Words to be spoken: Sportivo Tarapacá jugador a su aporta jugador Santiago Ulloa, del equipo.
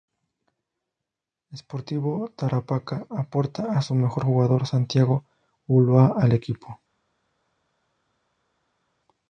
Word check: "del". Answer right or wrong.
wrong